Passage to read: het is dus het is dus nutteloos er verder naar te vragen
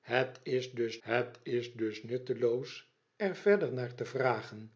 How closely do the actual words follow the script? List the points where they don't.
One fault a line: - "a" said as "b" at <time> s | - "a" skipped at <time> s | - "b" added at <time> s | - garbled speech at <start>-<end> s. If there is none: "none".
none